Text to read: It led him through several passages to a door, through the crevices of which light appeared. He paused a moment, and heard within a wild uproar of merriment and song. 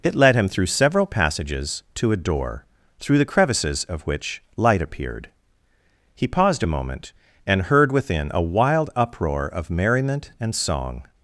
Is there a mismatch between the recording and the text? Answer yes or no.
no